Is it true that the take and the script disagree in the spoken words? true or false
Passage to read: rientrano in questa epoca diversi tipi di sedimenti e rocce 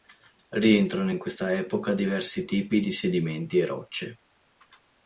false